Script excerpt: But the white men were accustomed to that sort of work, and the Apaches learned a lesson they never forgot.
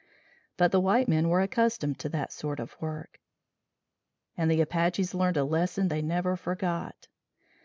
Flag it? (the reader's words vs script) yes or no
no